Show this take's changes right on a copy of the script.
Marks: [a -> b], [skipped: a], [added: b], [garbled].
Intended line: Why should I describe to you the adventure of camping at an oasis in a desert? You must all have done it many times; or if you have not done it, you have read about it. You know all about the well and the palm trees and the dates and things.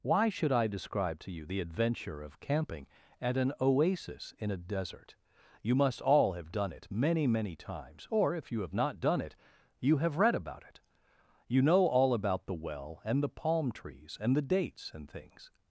Why should I describe to you the adventure of camping at an oasis in a desert? You must all have done it many [added: many] times; or if you have not done it, you have read about it. You know all about the well and the palm trees and the dates and things.